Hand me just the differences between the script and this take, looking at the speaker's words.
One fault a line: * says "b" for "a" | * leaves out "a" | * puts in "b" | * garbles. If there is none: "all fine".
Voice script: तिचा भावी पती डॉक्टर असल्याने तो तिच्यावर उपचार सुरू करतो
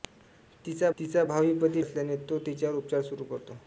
* puts in "तिचा"
* leaves out "डॉक्टर"